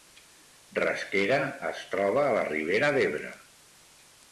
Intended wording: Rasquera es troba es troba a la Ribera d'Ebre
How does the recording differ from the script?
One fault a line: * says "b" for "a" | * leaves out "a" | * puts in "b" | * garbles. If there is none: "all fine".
* leaves out "es troba"